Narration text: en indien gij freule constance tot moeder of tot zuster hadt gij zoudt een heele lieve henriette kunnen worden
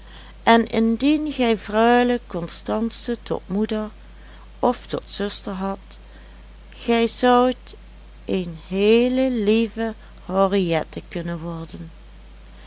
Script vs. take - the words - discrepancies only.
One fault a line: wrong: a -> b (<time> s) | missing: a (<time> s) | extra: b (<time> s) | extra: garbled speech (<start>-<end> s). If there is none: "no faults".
no faults